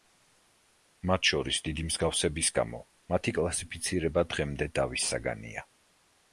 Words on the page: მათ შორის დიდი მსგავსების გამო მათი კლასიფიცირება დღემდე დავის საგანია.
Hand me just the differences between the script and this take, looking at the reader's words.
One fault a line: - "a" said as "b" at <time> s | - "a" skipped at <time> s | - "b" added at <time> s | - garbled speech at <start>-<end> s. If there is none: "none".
none